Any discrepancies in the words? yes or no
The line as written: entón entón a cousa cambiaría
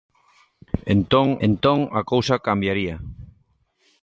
no